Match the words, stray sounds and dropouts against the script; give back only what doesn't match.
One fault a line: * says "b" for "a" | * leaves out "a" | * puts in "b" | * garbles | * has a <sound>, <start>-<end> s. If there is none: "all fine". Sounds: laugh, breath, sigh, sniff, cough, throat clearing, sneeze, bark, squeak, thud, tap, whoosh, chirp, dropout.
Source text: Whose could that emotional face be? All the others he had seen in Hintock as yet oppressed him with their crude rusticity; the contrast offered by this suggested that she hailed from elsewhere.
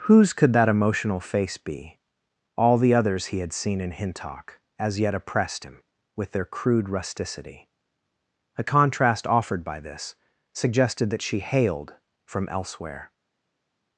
* says "a" for "the"